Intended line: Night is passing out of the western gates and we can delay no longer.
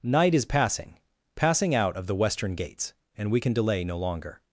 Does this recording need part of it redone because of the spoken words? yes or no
yes